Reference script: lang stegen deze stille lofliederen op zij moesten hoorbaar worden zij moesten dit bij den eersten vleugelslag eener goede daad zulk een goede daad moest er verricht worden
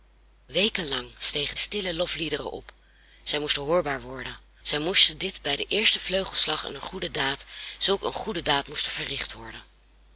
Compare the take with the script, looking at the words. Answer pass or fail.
fail